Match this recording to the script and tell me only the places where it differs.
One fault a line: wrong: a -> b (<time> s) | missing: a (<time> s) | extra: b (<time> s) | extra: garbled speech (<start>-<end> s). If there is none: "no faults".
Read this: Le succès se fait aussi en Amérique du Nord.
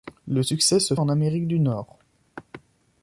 missing: fait aussi (1.0 s)